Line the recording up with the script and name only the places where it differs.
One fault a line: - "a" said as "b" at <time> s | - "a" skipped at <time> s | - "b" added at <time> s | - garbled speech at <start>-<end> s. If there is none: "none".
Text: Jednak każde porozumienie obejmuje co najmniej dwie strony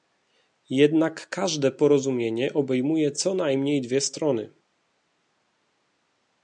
none